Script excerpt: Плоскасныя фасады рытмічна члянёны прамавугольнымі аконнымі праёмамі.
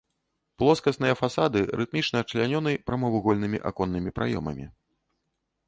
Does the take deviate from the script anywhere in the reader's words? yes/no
no